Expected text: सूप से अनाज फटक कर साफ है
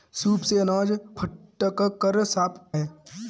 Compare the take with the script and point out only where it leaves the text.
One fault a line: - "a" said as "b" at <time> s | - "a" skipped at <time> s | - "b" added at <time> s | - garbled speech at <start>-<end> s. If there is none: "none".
none